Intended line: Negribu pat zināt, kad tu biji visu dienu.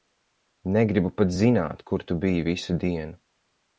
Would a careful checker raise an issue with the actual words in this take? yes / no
yes